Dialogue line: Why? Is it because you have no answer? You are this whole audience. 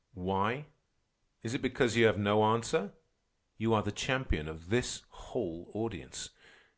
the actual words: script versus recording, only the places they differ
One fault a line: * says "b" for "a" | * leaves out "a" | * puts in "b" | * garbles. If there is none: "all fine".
* puts in "the champion of"